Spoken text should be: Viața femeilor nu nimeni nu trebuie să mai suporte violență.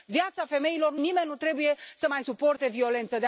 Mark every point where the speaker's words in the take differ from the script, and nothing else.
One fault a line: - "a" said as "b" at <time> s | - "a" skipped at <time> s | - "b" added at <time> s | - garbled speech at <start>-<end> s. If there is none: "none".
none